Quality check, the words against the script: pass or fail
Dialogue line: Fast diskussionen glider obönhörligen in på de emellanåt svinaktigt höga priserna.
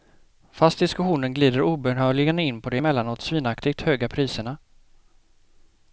pass